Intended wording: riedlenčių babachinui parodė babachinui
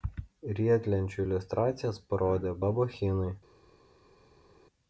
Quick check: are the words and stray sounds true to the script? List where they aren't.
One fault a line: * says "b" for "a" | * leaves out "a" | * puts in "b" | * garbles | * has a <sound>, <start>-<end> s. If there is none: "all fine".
* says "iliustracijas" for "babachinui"